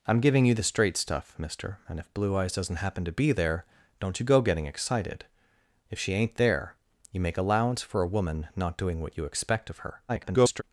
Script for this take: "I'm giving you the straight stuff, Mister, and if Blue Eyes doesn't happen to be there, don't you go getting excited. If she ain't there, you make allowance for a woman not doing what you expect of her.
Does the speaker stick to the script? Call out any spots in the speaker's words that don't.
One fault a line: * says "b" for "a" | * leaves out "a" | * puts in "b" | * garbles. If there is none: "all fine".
* garbles